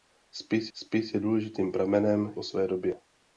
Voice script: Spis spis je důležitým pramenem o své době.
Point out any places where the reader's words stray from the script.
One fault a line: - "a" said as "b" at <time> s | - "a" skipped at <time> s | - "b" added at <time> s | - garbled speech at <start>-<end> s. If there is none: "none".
none